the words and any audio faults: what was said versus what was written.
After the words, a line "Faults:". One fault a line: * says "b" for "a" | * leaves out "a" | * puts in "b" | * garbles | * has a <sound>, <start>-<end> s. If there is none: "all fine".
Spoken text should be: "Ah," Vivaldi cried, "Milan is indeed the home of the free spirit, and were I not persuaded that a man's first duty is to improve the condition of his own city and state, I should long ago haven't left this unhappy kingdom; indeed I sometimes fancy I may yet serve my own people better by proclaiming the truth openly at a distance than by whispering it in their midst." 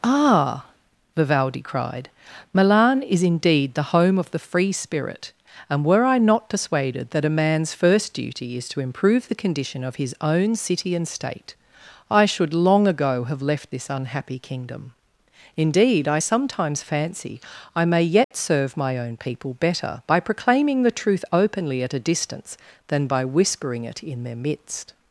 "Ah," Vivaldi cried, "Milan is indeed the home of the free spirit, and were I not persuaded that a man's first duty is to improve the condition of his own city and state, I should long ago have left this unhappy kingdom; indeed I sometimes fancy I may yet serve my own people better by proclaiming the truth openly at a distance than by whispering it in their midst."
Faults:
* says "have" for "haven't"
* has a dropout, 18.2-18.3 s